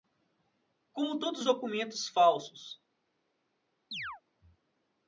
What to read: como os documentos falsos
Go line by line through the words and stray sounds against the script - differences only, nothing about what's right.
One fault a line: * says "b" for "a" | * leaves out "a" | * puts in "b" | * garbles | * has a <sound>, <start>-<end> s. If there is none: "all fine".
* puts in "todos"
* has a chirp, 3.9-4.2 s